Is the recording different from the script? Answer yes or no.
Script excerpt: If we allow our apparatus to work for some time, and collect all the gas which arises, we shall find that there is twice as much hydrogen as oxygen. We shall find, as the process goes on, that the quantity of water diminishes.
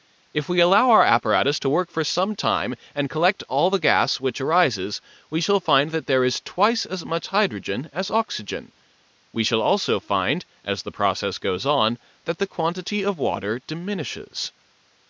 yes